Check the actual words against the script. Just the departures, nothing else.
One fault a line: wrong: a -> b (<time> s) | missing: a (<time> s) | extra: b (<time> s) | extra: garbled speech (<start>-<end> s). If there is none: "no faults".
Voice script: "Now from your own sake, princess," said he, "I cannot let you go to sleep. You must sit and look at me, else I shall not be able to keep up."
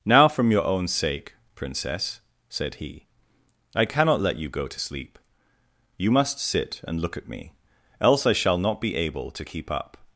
no faults